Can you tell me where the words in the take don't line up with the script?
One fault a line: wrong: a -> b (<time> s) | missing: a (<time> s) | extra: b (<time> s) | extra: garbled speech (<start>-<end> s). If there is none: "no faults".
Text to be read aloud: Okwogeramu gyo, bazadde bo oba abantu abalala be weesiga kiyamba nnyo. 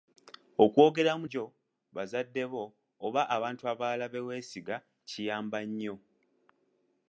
no faults